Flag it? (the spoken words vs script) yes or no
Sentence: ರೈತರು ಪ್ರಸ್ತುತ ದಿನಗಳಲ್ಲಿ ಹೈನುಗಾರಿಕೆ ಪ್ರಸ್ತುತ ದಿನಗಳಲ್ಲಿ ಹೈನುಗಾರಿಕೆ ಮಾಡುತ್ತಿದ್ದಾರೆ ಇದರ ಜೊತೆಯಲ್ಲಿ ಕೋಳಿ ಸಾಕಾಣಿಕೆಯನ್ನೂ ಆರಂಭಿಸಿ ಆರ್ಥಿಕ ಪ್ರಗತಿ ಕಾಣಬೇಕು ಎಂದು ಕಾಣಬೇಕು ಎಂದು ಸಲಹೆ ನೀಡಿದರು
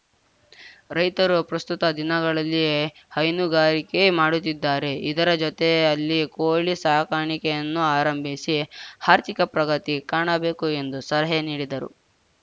yes